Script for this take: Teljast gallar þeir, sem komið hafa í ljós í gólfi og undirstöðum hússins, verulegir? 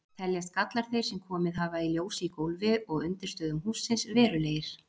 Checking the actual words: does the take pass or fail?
pass